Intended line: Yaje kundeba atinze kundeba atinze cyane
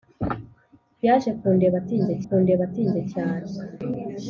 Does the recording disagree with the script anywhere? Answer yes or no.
no